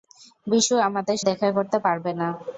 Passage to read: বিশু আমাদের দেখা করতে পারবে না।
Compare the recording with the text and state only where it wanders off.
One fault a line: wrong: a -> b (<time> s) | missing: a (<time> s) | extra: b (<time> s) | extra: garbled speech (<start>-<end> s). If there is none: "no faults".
no faults